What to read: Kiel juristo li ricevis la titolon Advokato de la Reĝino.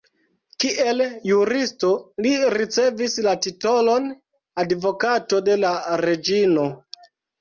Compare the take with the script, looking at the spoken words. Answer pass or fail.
pass